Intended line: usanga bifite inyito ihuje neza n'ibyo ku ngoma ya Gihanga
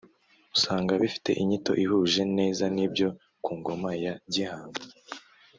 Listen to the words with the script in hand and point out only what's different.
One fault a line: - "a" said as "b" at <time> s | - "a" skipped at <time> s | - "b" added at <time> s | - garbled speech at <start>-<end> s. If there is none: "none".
none